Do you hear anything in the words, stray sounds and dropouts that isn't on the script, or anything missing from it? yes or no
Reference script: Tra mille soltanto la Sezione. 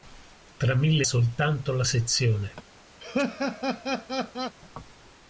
yes